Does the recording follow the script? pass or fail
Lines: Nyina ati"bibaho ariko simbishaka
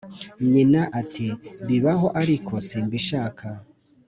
pass